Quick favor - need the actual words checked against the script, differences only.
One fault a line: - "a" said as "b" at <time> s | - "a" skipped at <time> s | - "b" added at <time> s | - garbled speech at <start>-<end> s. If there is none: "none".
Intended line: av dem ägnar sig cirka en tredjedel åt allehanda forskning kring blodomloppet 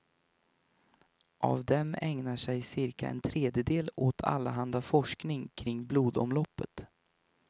none